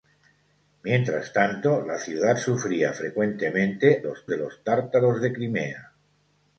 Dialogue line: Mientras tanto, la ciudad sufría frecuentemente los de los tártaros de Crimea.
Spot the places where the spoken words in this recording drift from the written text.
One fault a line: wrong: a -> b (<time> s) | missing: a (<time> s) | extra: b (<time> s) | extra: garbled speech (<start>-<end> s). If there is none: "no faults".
no faults